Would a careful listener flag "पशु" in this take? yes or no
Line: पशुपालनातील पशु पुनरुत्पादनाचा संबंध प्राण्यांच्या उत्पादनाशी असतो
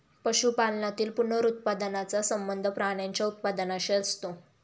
yes